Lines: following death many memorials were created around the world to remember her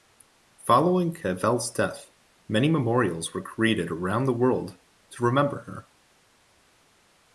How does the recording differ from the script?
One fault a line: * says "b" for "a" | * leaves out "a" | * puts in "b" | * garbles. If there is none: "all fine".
* puts in "cavell's"